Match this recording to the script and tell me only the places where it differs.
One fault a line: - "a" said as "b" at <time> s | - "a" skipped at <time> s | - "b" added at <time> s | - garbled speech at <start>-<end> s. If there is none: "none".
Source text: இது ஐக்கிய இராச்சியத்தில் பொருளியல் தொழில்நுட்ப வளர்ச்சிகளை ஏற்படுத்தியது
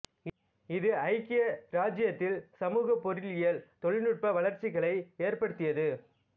- "சமூக" added at 2.5 s